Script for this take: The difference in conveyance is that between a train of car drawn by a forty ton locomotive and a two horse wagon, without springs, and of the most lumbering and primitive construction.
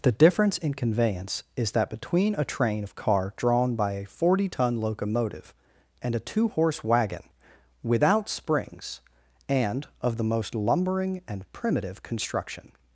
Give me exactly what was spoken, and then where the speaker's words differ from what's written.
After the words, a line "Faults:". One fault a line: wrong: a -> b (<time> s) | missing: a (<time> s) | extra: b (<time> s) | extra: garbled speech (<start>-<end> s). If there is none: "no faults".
The difference in conveyance is that between a train of car drawn by a forty ton locomotive and a two horse wagon, without springs, and of the most lumbering and primitive construction.
Faults:
no faults